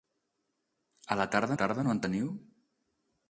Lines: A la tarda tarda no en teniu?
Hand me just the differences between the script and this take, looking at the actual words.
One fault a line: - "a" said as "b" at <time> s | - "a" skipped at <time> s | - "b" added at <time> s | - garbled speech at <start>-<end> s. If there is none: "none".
none